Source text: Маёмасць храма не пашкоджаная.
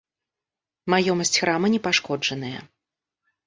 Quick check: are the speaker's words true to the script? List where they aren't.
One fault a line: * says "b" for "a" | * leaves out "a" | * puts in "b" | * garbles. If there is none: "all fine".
all fine